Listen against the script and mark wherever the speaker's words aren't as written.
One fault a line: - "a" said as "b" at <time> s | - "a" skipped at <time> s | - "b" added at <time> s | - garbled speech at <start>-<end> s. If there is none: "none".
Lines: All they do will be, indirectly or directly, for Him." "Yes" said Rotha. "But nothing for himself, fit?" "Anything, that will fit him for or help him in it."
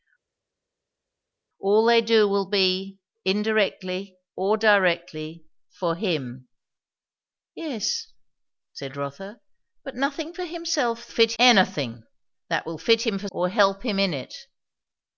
none